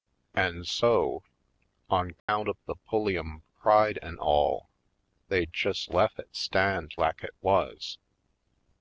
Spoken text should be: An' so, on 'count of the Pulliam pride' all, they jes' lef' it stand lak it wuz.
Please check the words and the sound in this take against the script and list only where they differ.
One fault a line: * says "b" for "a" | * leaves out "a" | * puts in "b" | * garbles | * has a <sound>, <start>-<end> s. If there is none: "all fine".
* has a dropout, 2.2-2.3 s
* puts in "an"